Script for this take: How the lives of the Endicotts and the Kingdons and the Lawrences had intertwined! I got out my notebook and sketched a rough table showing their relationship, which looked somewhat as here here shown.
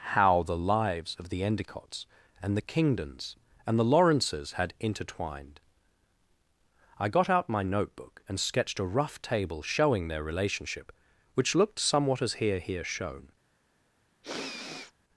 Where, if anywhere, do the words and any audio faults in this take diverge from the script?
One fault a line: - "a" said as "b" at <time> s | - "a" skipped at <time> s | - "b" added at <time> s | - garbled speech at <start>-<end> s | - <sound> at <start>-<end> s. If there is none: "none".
- sniff at 14.2-14.9 s